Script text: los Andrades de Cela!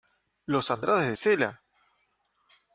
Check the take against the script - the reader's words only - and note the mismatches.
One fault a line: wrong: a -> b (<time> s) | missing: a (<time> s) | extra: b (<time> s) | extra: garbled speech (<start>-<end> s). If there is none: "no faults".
no faults